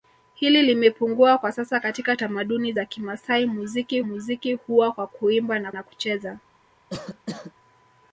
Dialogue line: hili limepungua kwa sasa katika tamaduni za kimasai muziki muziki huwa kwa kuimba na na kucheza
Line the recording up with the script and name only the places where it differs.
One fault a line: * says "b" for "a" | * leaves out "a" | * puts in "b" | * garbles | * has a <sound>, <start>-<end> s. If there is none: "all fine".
* has a cough, 6.9-7.5 s